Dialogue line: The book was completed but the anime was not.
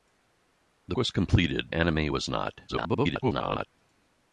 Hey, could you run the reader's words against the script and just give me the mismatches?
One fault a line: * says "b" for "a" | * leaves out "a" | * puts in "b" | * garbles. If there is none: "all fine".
* leaves out "book"
* leaves out "but the"
* garbles